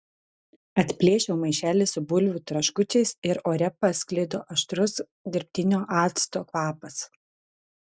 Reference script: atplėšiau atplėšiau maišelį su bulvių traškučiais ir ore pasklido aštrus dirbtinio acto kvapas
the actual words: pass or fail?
fail